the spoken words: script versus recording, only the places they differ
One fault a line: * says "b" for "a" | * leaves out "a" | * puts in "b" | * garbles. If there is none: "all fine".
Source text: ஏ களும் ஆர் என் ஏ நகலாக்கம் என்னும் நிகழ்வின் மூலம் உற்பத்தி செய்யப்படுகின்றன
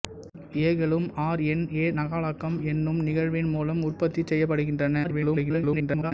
* garbles